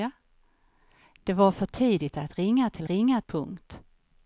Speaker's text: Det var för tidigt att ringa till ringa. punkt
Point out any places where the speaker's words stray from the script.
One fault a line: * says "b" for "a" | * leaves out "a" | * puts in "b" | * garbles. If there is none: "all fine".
all fine